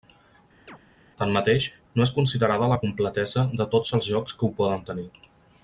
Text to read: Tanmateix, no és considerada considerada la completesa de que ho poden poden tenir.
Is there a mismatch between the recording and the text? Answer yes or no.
yes